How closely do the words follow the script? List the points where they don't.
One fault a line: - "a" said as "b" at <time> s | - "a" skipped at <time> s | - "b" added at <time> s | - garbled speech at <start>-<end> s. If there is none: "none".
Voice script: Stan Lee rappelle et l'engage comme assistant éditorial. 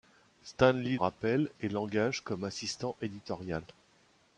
none